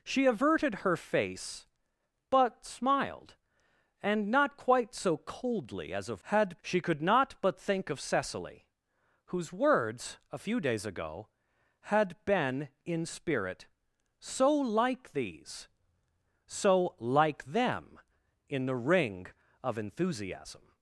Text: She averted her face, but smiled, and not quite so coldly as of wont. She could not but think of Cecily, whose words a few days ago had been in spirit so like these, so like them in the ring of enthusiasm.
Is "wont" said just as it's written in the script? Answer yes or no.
no